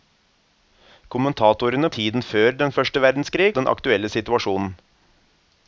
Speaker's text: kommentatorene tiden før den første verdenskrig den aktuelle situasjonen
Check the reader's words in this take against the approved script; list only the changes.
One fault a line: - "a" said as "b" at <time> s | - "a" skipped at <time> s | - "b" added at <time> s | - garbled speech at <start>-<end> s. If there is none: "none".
none